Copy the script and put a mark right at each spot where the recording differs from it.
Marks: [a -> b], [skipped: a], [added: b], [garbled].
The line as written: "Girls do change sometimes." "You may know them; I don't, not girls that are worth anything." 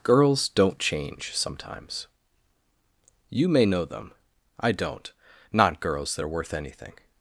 "Girls [do -> don't] change sometimes." "You may know them; I don't, not girls that are worth anything."